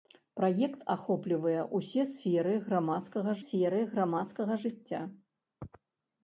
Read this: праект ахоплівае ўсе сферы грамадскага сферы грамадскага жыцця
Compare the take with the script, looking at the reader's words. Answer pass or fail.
pass